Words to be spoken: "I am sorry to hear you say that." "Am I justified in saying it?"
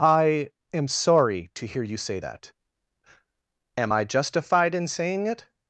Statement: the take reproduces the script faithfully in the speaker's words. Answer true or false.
true